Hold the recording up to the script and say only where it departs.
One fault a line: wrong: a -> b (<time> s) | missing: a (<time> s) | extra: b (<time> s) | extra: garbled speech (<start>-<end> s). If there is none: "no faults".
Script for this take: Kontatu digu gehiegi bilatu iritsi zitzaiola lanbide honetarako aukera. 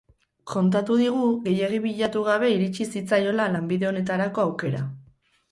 extra: gabe (2.3 s)